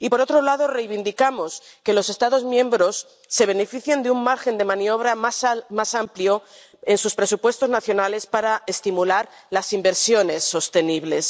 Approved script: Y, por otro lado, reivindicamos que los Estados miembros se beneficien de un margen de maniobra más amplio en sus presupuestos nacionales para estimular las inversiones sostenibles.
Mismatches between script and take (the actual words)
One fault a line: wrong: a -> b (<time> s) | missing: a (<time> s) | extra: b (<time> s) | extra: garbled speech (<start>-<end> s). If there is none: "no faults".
no faults